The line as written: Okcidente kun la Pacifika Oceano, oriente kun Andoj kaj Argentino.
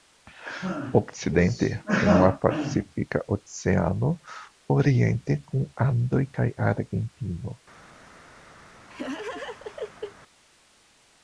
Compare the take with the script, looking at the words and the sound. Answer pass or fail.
fail